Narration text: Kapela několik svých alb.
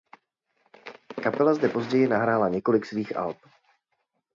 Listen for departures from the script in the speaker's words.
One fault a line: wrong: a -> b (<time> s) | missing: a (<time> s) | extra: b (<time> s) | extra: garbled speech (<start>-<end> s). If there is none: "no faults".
extra: zde později nahrála (1.5 s)